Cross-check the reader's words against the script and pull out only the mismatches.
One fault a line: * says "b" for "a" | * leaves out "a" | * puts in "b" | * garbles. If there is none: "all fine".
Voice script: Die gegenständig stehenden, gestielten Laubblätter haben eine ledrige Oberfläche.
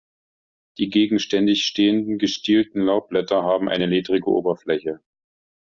all fine